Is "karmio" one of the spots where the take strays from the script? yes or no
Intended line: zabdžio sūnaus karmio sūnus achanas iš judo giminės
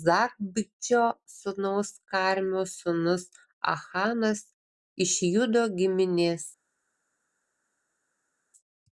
no